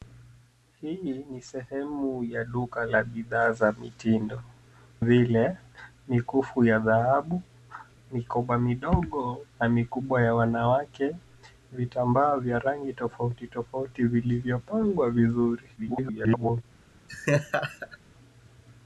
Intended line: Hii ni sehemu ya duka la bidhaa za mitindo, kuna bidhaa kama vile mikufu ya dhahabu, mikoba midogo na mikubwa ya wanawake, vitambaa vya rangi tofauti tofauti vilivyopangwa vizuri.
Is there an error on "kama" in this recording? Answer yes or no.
yes